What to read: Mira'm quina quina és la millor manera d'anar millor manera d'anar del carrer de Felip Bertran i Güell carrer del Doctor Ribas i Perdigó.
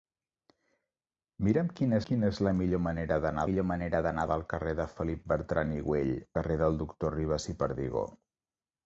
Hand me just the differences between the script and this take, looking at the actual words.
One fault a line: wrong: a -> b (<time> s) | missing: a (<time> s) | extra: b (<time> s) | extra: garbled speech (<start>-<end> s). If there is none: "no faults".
no faults